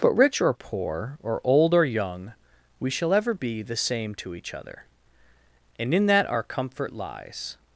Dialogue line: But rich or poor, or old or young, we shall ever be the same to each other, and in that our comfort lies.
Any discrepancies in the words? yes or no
no